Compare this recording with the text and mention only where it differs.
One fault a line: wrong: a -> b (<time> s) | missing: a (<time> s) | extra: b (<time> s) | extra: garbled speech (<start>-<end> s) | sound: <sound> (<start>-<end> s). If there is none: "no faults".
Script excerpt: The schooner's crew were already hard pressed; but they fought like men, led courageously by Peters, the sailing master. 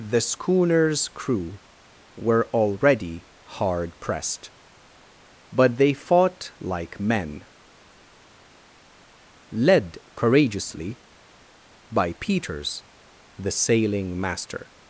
no faults